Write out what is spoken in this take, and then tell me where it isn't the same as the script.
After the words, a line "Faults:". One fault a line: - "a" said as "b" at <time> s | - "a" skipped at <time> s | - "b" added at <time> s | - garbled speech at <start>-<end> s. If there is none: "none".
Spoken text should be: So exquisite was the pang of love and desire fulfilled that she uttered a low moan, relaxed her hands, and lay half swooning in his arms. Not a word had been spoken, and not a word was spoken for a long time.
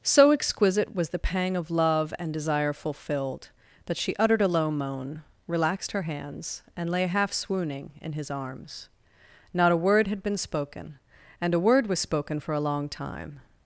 So exquisite was the pang of love and desire fulfilled that she uttered a low moan, relaxed her hands, and lay half swooning in his arms. Not a word had been spoken, and a word was spoken for a long time.
Faults:
- "not" skipped at 11.5 s